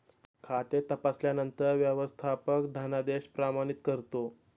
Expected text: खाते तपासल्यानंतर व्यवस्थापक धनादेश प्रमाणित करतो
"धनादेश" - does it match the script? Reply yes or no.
yes